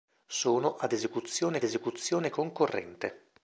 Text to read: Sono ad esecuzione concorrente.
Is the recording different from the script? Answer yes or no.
yes